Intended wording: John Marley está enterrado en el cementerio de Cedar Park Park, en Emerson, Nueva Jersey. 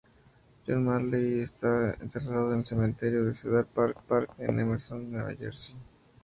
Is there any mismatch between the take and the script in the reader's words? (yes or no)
no